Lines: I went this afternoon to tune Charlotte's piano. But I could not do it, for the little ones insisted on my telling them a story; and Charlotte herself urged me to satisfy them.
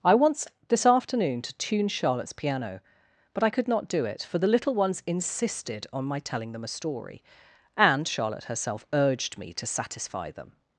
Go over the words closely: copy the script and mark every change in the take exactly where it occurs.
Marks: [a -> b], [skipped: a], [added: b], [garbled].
I [went -> want] this afternoon to tune Charlotte's piano. But I could not do it, for the little ones insisted on my telling them a story; and Charlotte herself urged me to satisfy them.